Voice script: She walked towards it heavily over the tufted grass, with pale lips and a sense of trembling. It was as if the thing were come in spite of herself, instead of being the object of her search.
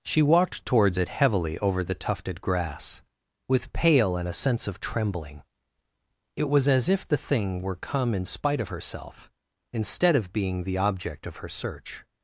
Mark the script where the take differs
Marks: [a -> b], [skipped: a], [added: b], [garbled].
She walked towards it heavily over the tufted grass, with pale [skipped: lips] and a sense of trembling. It was as if the thing were come in spite of herself, instead of being the object of her search.